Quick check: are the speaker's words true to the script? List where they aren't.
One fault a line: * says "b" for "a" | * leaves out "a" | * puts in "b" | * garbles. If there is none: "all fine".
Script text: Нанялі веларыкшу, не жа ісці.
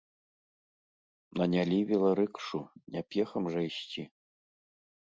* puts in "пехам"